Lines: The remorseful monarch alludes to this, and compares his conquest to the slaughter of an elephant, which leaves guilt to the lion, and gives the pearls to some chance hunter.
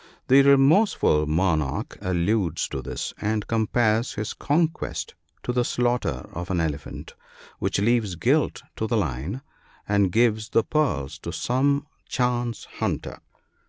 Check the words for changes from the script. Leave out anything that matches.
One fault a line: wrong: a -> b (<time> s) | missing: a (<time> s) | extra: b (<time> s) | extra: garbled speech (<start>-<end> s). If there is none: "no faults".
no faults